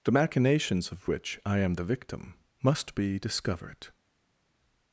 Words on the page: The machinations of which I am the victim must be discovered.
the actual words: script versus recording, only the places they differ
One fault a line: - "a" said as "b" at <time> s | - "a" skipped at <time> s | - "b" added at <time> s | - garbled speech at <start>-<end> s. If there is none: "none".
none